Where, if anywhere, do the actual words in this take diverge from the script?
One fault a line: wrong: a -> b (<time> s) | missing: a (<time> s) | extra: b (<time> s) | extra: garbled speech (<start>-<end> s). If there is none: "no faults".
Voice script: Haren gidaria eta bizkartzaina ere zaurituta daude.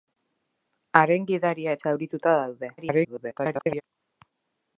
missing: eta bizkartzaina ere (1.8 s)
extra: garbled speech (2.8-3.8 s)